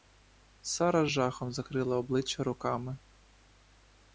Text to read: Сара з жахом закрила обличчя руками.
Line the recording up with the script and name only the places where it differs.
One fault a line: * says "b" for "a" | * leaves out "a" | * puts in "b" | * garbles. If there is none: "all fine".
all fine